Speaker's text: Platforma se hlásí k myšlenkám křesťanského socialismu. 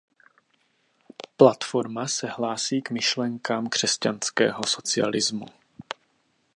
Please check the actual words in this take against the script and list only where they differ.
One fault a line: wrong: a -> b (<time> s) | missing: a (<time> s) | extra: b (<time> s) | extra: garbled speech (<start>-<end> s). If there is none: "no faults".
no faults